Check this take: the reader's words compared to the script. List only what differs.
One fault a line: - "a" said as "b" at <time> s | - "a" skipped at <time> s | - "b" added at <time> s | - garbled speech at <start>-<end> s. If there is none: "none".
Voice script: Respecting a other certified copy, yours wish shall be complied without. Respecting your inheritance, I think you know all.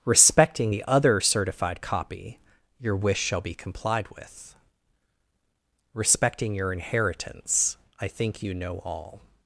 - "a" said as "the" at 0.7 s
- "yours" said as "your" at 2.8 s
- "without" said as "with" at 4.1 s